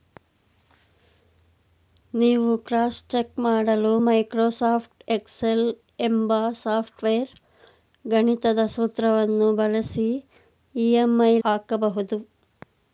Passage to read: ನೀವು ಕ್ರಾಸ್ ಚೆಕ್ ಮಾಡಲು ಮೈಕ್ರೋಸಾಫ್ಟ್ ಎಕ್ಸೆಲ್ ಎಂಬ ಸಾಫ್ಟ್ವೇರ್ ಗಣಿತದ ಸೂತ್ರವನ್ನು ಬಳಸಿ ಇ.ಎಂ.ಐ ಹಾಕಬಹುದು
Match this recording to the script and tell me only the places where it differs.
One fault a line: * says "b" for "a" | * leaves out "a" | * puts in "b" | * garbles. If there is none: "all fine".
all fine